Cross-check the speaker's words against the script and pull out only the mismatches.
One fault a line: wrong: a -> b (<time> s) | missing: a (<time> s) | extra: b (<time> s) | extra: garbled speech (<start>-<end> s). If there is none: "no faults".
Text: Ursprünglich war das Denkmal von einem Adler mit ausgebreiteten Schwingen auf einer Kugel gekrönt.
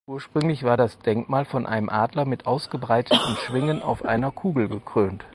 no faults